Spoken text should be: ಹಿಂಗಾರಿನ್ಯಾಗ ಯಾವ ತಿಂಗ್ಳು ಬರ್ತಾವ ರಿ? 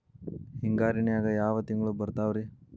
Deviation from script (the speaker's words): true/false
false